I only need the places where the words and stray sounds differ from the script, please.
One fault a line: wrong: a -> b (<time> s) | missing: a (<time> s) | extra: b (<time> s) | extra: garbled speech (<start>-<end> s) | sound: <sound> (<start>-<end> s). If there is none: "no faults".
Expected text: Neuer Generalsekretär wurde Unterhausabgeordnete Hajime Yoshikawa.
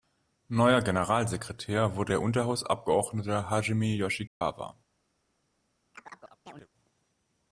extra: der (2.1 s)
sound: dropout (4.3-4.4 s)
sound: chirp (5.9-6.7 s)